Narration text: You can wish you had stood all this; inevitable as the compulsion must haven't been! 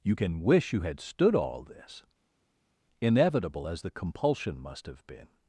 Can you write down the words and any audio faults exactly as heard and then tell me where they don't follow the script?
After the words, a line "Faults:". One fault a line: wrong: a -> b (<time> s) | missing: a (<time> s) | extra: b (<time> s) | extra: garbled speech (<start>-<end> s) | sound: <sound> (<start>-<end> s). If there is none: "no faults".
You can wish you had stood all this; inevitable as the compulsion must have been!
Faults:
wrong: haven't -> have (4.9 s)